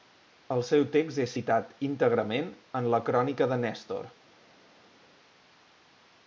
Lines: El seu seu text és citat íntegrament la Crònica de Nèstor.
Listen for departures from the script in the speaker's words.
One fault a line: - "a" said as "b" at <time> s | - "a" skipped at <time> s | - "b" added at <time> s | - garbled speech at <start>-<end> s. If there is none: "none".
- "seu" skipped at 0.8 s
- "en" added at 2.8 s